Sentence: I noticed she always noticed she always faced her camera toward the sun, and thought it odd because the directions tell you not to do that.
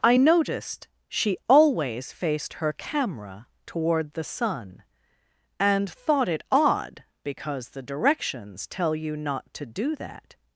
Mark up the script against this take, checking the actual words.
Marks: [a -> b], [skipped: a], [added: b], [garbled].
I noticed she always [skipped: noticed she always] faced her camera toward the sun, and thought it odd because the directions tell you not to do that.